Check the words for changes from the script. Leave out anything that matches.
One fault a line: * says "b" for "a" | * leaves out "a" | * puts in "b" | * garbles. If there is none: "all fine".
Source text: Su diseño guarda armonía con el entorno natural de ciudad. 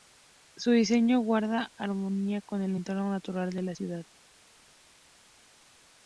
* puts in "la"